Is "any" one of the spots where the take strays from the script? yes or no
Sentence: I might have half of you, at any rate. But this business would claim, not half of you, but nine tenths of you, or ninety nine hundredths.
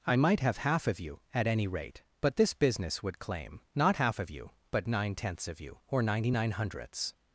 no